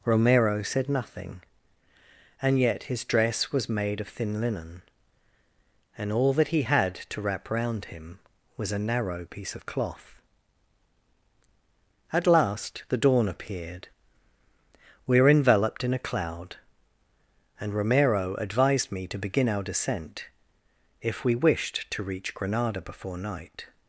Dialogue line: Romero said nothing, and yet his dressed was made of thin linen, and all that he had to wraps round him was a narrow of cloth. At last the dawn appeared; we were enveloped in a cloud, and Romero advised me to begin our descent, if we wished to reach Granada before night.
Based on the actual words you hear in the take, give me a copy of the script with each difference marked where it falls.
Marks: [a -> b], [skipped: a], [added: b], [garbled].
Romero said nothing, and yet his [dressed -> dress] was made of thin linen, and all that he had to [wraps -> wrap] round him was a narrow [added: piece] of cloth. At last the dawn appeared; we were enveloped in a cloud, and Romero advised me to begin our descent, if we wished to reach Granada before night.